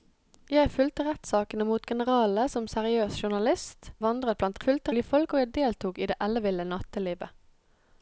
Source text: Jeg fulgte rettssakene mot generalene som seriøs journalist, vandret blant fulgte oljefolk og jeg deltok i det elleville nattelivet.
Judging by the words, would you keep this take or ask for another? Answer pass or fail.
pass